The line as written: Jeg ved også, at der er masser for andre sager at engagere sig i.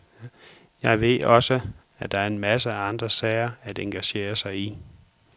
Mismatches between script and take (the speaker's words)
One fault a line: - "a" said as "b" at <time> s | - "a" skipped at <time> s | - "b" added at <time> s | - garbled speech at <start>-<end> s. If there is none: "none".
- "for" said as "af" at 2.7 s